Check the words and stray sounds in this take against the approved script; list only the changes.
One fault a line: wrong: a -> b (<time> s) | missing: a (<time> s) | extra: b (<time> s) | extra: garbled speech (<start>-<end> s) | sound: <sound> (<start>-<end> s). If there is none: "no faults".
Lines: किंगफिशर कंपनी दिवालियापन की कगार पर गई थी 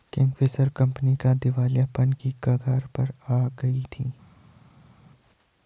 extra: आ (3.3 s)